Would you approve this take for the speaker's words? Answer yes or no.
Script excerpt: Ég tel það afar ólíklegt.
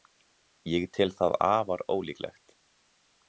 yes